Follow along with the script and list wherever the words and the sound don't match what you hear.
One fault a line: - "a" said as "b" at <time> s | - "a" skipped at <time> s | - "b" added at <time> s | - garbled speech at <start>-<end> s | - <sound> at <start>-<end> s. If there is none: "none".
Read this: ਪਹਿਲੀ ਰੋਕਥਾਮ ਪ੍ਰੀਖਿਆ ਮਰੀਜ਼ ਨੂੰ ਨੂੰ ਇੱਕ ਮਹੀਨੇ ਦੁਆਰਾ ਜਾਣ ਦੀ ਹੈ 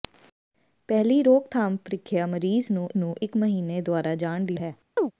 - chirp at 5.0-5.1 s